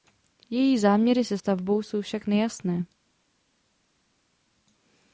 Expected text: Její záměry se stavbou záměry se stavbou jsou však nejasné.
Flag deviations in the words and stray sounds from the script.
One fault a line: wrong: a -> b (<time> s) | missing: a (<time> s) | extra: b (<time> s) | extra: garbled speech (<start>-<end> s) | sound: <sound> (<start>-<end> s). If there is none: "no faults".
missing: záměry se stavbou (1.8 s)